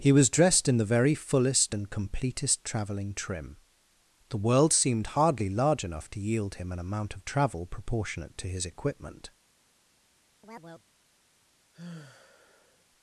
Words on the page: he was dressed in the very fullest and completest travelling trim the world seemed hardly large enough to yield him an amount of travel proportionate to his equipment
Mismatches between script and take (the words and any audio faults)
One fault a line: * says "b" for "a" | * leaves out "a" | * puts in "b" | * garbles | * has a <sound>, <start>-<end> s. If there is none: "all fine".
* has a chirp, 10.4-10.9 s
* has a sigh, 11.7-12.8 s